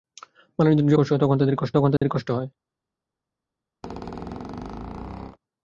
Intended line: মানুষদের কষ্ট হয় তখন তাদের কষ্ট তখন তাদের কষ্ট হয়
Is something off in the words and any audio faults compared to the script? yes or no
yes